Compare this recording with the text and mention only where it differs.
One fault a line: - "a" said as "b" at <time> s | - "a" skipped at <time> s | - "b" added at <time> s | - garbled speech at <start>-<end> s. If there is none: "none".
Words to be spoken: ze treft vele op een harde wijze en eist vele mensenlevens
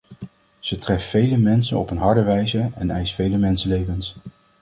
- "mensen" added at 1.4 s